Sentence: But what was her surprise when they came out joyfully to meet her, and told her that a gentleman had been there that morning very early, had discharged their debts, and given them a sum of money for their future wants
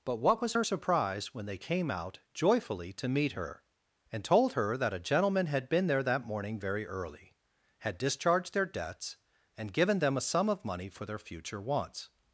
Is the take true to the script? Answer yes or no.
yes